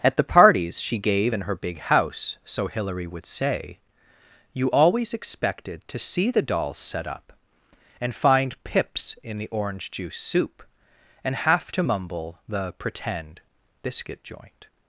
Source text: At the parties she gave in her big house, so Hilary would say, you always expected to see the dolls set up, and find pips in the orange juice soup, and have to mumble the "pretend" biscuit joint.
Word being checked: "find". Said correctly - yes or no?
yes